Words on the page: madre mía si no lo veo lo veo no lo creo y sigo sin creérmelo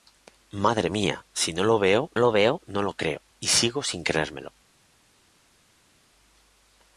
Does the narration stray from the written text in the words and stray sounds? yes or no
no